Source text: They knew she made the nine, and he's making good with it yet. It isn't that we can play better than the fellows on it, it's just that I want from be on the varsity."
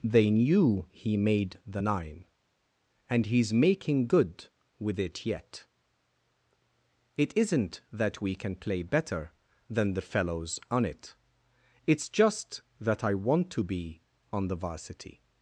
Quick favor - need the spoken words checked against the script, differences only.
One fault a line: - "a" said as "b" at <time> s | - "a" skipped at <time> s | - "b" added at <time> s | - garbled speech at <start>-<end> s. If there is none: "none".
- "she" said as "he" at 0.9 s
- "from" said as "to" at 13.5 s